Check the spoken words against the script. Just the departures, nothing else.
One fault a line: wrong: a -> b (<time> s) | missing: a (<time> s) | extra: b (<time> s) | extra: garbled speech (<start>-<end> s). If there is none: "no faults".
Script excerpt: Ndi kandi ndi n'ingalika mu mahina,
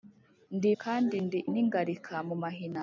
no faults